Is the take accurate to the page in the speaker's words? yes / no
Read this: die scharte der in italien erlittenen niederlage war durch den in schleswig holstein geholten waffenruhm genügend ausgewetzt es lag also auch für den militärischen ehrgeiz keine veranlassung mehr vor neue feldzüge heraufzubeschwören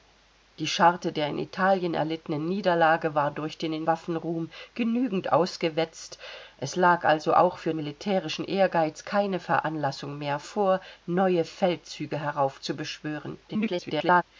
no